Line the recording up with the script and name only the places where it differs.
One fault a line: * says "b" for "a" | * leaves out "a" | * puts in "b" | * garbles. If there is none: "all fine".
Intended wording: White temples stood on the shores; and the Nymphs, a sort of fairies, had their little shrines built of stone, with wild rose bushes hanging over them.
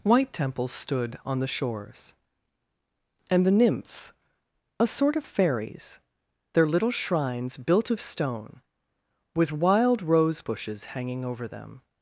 * leaves out "had"